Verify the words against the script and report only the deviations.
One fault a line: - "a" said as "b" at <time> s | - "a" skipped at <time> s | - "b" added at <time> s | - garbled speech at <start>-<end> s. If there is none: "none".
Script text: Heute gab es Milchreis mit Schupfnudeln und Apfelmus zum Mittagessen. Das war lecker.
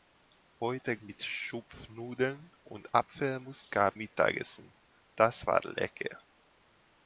- "gab es Milchreis" skipped at 1.0 s
- "zum" said as "gab" at 3.7 s